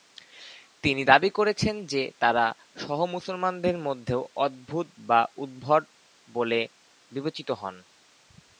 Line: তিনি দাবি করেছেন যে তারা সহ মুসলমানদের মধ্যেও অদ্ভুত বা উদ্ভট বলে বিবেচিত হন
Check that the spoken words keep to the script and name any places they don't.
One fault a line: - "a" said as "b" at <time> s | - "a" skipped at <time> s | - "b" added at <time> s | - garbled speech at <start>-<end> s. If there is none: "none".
none